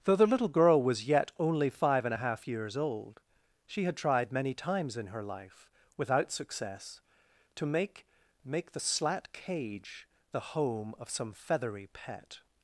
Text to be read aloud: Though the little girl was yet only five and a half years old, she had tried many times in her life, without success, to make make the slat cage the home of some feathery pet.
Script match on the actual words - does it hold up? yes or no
yes